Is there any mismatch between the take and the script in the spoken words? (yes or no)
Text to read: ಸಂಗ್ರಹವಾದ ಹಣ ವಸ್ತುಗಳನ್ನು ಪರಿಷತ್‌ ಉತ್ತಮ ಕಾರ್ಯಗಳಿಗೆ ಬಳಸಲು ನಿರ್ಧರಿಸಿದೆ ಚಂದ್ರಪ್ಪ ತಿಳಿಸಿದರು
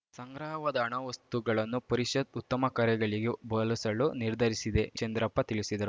no